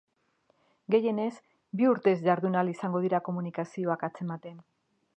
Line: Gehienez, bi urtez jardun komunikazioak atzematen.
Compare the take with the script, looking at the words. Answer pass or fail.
fail